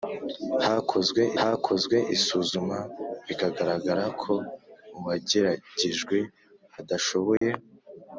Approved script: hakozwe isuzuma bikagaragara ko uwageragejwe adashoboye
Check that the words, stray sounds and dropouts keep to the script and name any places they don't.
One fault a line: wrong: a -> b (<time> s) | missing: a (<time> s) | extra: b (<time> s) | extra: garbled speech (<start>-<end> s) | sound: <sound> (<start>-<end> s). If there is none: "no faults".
extra: hakozwe (1.4 s)
sound: dropout (7.4-7.4 s)